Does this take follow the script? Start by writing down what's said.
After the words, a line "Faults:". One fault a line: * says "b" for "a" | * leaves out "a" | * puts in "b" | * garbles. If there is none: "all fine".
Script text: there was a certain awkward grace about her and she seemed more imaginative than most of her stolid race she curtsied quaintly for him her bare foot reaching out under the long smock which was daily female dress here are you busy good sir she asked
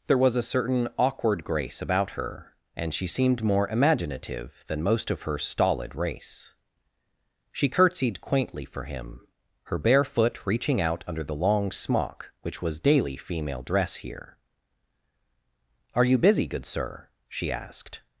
there was a certain awkward grace about her and she seemed more imaginative than most of her stolid race she curtsied quaintly for him her bare foot reaching out under the long smock which was daily female dress here are you busy good sir she asked
Faults:
all fine